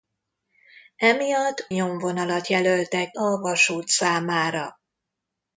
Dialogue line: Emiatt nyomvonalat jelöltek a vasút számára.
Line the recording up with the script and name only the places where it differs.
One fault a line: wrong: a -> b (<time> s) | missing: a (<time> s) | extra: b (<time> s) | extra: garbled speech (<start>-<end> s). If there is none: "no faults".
no faults